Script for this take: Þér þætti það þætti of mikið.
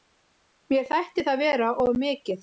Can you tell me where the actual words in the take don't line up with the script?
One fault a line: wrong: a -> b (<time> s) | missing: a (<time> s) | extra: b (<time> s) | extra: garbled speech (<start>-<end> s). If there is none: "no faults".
wrong: Þér -> Mér (0.7 s)
wrong: þætti -> vera (1.4 s)